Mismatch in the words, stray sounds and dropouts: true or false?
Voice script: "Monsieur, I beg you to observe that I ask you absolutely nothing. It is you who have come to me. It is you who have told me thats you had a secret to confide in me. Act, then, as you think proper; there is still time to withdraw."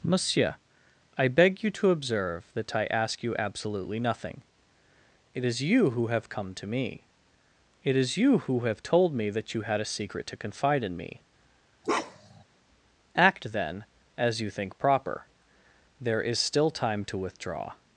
true